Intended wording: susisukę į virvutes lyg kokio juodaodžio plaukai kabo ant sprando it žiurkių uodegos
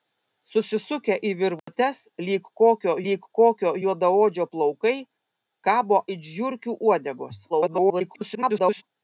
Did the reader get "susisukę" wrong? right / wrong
right